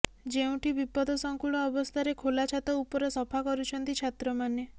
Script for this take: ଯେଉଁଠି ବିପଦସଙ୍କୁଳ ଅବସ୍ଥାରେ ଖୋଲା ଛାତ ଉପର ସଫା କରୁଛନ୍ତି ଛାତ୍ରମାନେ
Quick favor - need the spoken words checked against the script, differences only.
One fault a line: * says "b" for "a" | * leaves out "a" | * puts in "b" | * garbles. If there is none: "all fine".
all fine